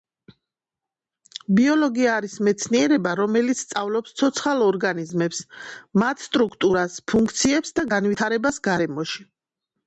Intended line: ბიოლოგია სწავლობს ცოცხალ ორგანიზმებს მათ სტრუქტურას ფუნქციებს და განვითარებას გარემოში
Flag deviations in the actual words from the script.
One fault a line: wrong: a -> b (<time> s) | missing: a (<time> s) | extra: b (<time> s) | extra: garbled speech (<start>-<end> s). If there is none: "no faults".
extra: არის მეცნიერება რომელიც (2.2 s)